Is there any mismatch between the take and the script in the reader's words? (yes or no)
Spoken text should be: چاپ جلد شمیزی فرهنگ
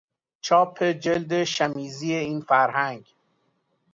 yes